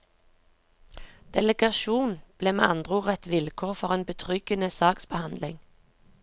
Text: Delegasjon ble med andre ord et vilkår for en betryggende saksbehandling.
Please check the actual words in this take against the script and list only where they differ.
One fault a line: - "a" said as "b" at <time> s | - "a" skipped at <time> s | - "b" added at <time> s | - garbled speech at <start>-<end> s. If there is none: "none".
none